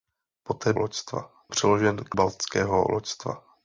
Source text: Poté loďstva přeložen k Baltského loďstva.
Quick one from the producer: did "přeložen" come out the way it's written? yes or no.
yes